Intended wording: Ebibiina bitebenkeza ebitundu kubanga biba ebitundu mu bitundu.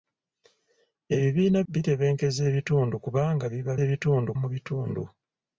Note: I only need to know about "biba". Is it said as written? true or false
true